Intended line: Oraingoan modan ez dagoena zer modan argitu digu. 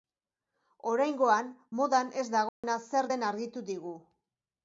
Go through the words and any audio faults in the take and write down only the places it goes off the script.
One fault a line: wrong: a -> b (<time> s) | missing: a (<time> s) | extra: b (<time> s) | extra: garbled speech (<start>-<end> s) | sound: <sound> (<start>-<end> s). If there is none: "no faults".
sound: dropout (2.5-2.6 s)
wrong: modan -> den (3.1 s)